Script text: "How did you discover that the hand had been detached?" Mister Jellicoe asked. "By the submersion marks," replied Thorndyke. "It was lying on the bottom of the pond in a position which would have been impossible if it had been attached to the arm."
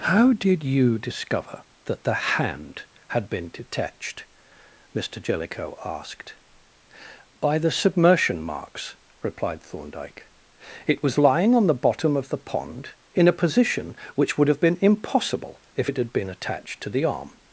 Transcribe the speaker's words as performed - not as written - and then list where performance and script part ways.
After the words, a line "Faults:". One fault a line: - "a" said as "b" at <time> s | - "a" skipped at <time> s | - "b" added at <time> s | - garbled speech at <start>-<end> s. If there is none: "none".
"How did you discover that the hand had been detached?" Mister Jellicoe asked. "By the submersion marks," replied Thorndyke. "It was lying on the bottom of the pond in a position which would have been impossible if it had been attached to the arm."
Faults:
none